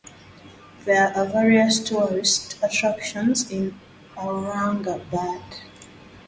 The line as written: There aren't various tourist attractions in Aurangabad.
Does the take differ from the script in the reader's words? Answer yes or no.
yes